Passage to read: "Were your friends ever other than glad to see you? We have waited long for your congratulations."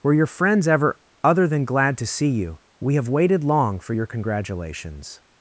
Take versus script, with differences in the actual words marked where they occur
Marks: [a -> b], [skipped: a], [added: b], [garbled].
"Were your friends ever other than glad to see you? We have waited long for your congratulations."